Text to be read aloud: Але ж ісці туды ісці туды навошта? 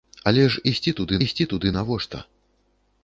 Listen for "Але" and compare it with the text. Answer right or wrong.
right